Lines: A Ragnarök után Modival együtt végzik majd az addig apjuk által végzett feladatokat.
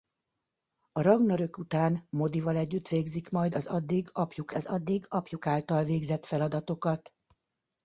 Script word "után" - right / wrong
right